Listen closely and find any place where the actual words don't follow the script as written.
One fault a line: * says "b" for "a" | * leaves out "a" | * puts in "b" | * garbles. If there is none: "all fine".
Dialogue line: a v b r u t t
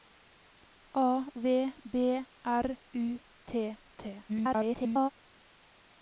* garbles